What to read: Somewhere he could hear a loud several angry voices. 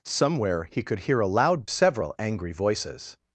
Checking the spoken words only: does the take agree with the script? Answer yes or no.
yes